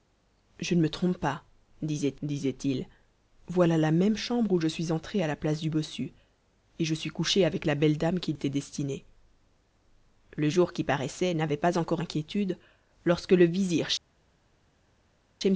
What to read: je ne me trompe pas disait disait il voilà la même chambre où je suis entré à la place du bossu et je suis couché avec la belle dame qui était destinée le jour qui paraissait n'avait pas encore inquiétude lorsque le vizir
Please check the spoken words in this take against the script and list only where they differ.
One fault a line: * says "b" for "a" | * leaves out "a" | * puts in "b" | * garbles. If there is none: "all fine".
all fine